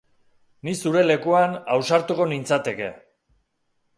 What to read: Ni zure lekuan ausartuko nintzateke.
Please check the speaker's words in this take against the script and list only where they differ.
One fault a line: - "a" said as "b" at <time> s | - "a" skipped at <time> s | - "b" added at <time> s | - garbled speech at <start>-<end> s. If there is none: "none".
none